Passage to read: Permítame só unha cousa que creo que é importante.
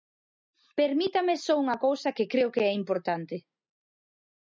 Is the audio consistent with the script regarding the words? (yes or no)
yes